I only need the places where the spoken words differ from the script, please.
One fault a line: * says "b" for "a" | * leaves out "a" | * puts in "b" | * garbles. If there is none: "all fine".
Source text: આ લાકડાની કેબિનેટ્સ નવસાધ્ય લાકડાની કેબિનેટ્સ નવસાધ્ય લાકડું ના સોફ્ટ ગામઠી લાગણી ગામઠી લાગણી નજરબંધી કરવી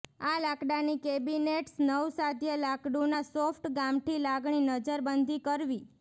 * leaves out "લાકડાની કેબિનેટ્સ નવસાધ્ય"
* leaves out "ગામઠી લાગણી"